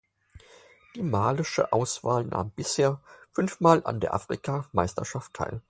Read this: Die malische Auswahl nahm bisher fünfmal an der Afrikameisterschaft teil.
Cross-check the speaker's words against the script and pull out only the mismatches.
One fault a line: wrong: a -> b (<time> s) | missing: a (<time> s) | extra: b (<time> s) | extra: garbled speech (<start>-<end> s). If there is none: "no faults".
no faults